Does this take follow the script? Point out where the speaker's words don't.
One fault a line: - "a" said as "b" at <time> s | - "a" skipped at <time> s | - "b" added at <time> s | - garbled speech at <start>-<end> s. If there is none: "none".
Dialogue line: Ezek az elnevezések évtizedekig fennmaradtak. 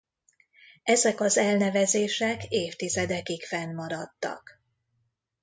none